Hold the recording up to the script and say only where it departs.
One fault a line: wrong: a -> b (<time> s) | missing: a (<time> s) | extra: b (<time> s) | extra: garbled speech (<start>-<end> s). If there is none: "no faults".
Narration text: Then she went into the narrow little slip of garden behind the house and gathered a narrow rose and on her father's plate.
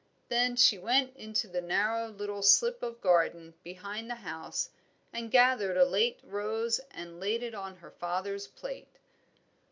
wrong: narrow -> late (5.8 s)
extra: laid it (7.2 s)